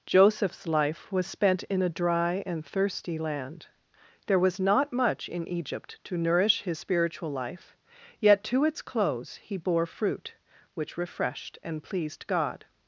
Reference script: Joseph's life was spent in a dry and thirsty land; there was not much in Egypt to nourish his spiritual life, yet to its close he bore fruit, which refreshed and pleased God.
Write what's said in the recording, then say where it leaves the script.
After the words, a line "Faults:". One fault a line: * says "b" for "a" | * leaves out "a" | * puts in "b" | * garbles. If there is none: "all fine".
Joseph's life was spent in a dry and thirsty land; there was not much in Egypt to nourish his spiritual life, yet to its close he bore fruit, which refreshed and pleased God.
Faults:
all fine